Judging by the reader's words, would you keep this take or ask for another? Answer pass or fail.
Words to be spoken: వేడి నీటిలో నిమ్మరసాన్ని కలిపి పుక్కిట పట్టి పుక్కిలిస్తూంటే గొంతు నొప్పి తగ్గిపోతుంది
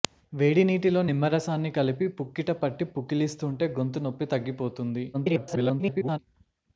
fail